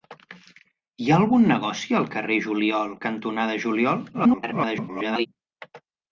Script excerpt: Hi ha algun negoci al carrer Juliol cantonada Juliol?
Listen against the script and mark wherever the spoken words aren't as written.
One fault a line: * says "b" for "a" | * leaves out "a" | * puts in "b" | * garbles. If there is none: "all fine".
* garbles